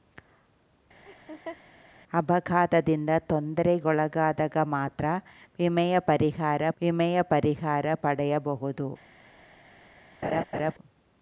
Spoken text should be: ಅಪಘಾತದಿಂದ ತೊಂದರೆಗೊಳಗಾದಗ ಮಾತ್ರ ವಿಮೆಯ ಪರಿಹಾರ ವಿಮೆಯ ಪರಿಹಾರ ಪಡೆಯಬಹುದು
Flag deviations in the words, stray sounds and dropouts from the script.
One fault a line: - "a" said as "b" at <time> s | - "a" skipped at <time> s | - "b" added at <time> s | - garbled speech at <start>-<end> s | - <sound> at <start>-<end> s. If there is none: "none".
- laugh at 1.1-1.6 s
- laugh at 10.2-10.7 s